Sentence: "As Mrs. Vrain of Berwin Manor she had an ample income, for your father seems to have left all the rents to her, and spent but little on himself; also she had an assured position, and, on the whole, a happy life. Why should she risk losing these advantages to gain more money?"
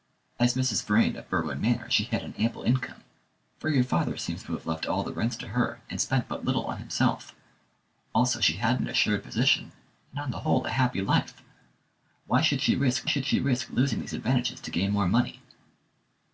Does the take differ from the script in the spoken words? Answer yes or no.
yes